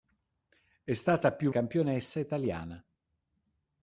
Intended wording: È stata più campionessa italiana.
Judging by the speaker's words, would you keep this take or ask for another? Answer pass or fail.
pass